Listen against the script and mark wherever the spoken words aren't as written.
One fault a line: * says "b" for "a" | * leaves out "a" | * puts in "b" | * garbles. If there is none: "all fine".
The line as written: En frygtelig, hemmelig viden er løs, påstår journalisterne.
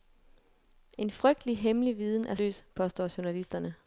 all fine